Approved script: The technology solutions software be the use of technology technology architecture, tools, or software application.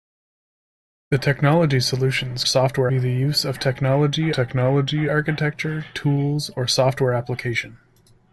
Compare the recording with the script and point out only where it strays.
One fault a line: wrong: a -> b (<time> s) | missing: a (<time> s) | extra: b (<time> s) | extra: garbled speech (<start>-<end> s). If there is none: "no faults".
no faults